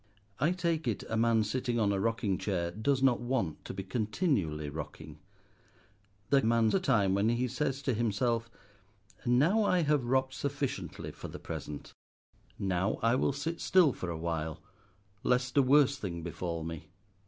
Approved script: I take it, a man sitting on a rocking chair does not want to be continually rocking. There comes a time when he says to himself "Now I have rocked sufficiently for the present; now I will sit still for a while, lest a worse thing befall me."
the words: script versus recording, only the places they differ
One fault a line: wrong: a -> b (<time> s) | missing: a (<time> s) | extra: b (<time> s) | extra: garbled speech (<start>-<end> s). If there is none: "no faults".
wrong: comes -> man (6.4 s)